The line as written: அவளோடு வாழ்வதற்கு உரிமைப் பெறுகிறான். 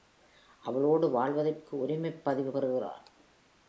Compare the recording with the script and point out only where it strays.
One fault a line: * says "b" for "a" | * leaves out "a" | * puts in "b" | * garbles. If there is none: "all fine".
* puts in "பதிவு"